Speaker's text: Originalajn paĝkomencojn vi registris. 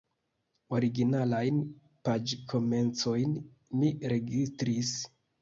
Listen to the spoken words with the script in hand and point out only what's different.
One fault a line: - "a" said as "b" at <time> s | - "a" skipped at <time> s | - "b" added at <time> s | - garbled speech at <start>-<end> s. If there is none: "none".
- "vi" said as "mi" at 3.8 s